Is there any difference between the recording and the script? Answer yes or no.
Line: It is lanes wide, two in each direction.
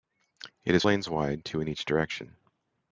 no